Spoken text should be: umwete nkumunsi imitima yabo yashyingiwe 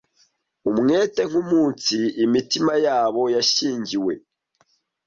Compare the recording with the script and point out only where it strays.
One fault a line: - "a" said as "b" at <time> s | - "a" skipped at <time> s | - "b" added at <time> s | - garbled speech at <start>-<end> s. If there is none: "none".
none